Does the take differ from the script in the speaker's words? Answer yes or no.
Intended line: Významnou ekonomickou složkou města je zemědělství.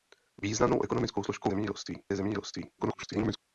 yes